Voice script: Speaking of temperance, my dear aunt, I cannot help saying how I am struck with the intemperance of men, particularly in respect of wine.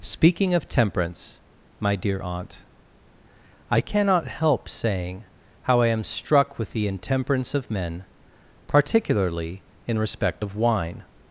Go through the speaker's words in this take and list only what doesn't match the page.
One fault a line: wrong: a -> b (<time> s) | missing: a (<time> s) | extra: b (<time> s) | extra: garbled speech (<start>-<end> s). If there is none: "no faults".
no faults